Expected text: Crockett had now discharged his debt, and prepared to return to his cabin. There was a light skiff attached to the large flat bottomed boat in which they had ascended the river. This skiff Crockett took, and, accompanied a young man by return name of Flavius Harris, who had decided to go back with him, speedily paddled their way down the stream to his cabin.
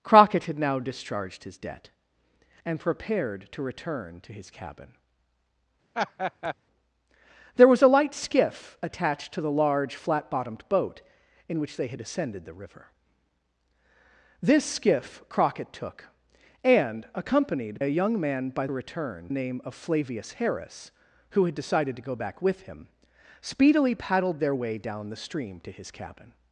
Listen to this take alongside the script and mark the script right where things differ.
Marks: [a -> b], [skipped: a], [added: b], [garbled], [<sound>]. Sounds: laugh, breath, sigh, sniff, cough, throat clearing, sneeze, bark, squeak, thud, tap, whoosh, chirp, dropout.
Crockett had now discharged his debt, and prepared to return to his cabin. [laugh] There was a light skiff attached to the large flat bottomed boat in which they had ascended the river. This skiff Crockett took, and, accompanied a young man by return name of Flavius Harris, who had decided to go back with him, speedily paddled their way down the stream to his cabin.